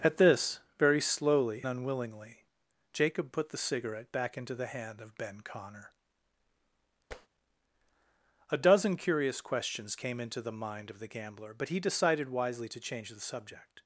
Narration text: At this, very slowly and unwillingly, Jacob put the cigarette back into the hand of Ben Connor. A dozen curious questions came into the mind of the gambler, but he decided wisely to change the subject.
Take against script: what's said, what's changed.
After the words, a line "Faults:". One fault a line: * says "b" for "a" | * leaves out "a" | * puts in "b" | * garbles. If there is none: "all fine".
At this, very slowly unwillingly, Jacob put the cigarette back into the hand of Ben Connor. A dozen curious questions came into the mind of the gambler, but he decided wisely to change the subject.
Faults:
* leaves out "and"